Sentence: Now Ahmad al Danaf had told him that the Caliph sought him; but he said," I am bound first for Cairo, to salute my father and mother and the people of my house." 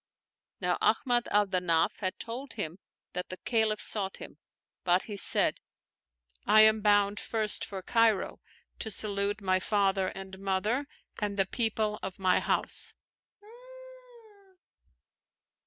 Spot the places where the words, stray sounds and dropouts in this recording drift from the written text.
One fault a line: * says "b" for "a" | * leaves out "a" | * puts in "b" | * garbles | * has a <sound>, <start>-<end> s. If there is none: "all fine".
* has a laugh, 13.4-14.6 s